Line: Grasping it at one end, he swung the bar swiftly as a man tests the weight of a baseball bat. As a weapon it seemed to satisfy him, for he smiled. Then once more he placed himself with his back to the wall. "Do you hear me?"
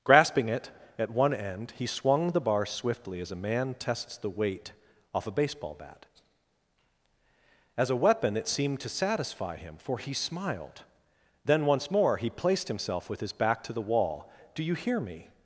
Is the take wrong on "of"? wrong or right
wrong